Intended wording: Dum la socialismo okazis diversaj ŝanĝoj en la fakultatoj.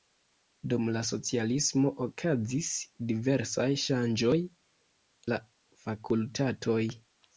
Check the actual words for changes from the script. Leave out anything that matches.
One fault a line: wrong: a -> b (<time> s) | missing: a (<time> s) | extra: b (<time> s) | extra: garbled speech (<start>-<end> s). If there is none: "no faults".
missing: en (4.3 s)